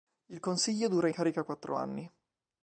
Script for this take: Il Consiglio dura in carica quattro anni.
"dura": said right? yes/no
yes